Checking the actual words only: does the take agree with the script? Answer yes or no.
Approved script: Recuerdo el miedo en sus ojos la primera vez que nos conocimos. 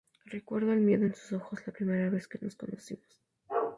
yes